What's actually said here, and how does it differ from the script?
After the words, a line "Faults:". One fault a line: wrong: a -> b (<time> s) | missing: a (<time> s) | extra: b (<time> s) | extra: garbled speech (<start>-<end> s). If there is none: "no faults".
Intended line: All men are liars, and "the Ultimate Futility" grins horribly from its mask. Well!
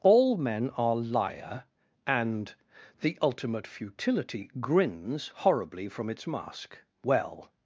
All men are liar, and "the Ultimate Futility" grins horribly from its mask. Well!
Faults:
wrong: liars -> liar (0.9 s)